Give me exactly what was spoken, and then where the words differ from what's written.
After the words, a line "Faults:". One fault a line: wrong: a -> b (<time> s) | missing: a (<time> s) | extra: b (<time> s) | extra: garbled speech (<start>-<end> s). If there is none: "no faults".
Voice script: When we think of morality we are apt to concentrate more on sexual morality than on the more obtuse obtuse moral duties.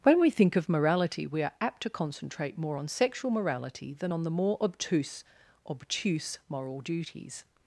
When we think of morality we are apt to concentrate more on sexual morality than on the more obtuse obtuse moral duties.
Faults:
no faults